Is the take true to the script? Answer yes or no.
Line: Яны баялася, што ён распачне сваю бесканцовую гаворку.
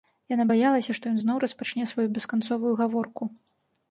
no